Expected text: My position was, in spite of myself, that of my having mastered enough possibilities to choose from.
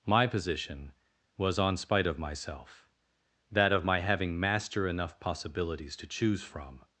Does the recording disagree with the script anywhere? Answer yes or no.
yes